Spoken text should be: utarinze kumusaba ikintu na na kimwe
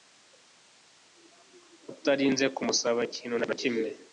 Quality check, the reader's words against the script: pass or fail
pass